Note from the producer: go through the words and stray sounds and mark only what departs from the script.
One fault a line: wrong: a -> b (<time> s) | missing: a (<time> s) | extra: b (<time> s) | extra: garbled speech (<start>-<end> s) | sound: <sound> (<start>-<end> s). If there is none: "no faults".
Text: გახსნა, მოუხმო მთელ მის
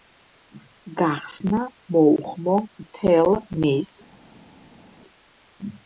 no faults